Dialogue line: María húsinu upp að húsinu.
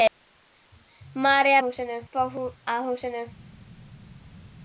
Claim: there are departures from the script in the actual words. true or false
false